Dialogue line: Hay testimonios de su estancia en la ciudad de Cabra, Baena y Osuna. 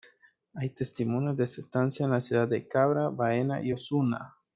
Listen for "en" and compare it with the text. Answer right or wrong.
right